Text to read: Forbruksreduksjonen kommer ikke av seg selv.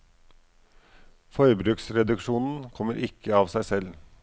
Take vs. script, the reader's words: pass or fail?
pass